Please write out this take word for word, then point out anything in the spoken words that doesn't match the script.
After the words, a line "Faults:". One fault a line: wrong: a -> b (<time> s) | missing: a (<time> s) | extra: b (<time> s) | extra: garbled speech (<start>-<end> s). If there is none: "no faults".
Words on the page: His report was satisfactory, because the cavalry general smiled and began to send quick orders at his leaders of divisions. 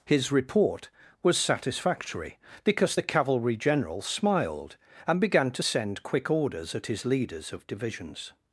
His report was satisfactory, because the cavalry general smiled and began to send quick orders at his leaders of divisions.
Faults:
no faults